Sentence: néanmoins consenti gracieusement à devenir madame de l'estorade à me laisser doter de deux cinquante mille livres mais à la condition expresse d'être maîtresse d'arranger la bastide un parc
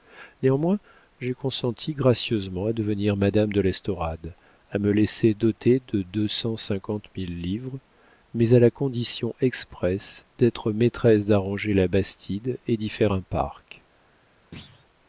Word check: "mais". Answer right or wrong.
right